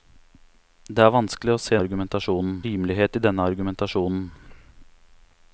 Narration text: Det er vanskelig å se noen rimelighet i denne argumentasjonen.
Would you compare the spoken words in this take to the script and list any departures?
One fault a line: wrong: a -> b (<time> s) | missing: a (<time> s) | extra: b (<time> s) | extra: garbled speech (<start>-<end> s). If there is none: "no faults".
wrong: noen -> argumentasjonen (1.8 s)